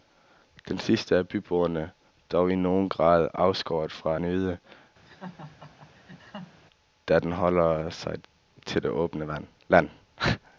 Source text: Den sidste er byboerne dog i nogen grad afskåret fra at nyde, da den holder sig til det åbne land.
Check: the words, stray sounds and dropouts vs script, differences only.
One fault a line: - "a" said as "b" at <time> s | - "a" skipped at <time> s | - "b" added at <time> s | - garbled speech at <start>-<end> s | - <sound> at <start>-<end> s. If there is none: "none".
- "at" skipped at 4.2 s
- laugh at 5.1-6.6 s